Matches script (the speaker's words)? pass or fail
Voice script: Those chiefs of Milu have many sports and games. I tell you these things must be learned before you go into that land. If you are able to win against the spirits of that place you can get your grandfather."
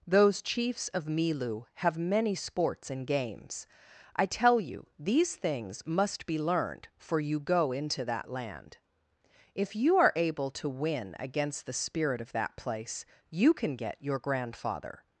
fail